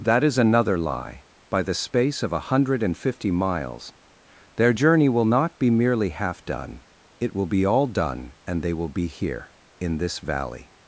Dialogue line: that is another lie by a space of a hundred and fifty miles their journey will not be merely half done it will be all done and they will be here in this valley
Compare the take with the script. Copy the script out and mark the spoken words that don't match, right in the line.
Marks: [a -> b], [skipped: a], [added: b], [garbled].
that is another lie by [a -> the] space of a hundred and fifty miles their journey will not be merely half done it will be all done and they will be here in this valley